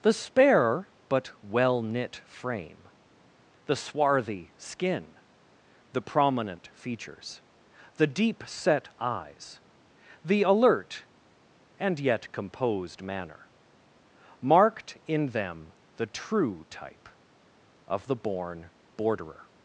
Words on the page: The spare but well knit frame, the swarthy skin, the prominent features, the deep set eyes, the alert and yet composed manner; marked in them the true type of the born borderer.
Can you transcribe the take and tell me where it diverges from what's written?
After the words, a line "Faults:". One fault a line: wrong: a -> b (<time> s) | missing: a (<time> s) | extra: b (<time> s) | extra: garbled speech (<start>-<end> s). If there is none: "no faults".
The spare but well knit frame, the swarthy skin, the prominent features, the deep set eyes, the alert and yet composed manner; marked in them the true type of the born borderer.
Faults:
no faults